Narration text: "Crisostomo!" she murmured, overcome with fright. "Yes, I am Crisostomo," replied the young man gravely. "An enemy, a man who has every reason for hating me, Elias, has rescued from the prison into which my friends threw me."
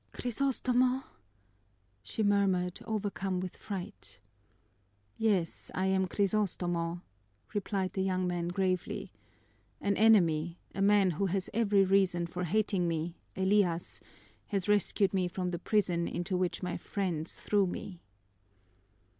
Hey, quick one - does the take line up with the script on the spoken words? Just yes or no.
no